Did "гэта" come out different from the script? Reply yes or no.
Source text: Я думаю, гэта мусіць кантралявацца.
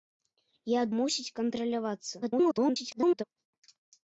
yes